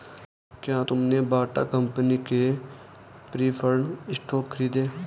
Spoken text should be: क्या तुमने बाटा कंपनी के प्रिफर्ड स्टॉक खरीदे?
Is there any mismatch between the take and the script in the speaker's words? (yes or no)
no